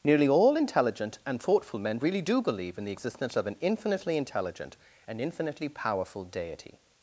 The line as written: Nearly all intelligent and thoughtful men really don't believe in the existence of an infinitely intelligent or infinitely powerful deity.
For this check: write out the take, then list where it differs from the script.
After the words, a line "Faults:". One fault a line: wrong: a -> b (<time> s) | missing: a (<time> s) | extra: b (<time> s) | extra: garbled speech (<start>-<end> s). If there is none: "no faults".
Nearly all intelligent and thoughtful men really do believe in the existence of an infinitely intelligent and infinitely powerful deity.
Faults:
wrong: don't -> do (2.2 s)
wrong: or -> and (5.1 s)